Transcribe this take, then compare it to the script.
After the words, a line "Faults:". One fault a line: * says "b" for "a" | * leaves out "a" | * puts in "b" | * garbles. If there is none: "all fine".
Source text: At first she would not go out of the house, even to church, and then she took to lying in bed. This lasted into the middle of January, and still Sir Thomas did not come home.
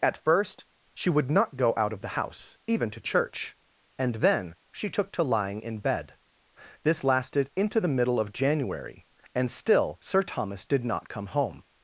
At first she would not go out of the house, even to church, and then she took to lying in bed. This lasted into the middle of January, and still Sir Thomas did not come home.
Faults:
all fine